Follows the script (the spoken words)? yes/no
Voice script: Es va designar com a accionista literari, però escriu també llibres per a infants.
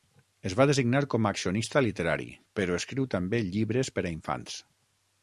yes